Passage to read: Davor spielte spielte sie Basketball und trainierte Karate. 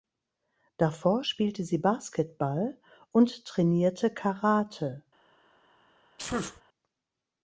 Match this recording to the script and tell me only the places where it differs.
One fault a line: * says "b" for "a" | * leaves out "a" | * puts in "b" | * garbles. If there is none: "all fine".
* leaves out "spielte"